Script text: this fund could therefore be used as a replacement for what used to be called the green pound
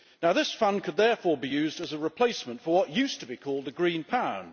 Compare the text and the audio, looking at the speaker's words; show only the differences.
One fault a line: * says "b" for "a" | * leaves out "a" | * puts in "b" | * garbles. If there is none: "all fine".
all fine